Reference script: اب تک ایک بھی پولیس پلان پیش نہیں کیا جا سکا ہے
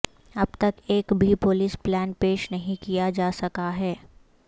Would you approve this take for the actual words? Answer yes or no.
yes